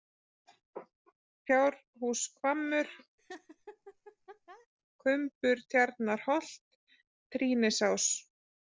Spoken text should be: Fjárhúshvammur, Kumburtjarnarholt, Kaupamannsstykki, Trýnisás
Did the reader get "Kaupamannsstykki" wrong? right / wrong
wrong